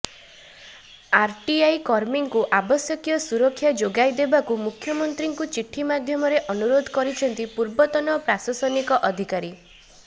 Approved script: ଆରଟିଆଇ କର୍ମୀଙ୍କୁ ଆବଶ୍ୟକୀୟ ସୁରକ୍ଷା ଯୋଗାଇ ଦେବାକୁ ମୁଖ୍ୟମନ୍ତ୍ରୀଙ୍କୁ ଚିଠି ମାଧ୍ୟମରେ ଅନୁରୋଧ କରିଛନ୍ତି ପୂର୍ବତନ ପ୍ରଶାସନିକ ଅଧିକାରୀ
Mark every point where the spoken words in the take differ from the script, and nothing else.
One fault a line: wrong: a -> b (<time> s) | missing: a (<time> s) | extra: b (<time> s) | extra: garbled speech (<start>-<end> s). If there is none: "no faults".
no faults